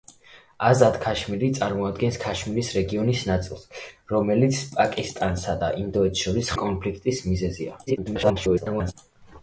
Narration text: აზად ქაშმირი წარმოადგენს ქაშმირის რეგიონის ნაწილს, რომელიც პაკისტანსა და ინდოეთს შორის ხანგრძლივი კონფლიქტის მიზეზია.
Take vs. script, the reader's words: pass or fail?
fail